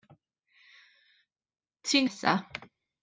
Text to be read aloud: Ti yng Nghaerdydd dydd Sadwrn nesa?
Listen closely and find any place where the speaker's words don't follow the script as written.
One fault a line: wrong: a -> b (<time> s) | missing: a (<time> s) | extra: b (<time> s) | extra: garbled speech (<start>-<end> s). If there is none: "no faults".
missing: Nghaerdydd dydd Sadwrn (2.1 s)